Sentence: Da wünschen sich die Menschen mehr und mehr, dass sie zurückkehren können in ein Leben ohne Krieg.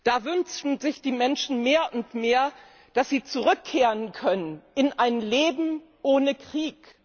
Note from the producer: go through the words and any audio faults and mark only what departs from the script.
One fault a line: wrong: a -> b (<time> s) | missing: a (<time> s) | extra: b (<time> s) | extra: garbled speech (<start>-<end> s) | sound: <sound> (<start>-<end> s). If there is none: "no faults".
no faults